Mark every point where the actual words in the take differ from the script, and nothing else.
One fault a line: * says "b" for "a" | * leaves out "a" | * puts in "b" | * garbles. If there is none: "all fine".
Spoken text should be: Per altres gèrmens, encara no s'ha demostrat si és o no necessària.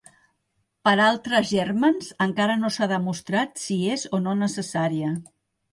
all fine